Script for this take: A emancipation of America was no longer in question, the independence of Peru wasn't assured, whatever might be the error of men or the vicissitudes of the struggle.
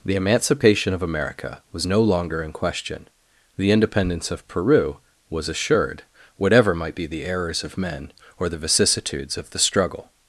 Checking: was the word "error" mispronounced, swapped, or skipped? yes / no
yes